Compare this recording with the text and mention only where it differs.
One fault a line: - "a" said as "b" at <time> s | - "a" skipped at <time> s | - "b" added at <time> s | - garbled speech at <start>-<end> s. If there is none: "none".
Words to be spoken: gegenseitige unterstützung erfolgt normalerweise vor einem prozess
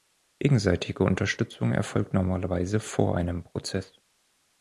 none